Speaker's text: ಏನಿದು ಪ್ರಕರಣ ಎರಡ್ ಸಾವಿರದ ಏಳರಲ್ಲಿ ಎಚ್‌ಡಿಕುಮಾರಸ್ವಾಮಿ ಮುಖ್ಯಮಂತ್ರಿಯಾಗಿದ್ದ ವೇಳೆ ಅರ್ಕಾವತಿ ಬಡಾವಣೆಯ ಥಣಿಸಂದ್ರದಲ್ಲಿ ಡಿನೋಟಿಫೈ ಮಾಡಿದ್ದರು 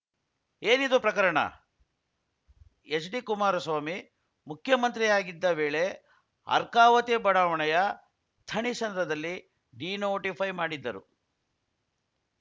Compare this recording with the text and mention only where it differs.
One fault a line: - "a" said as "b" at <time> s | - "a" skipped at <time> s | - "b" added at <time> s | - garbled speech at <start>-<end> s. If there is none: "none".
- "ಎರಡ್ ಸಾವಿರದ ಏಳರಲ್ಲಿ" skipped at 1.4 s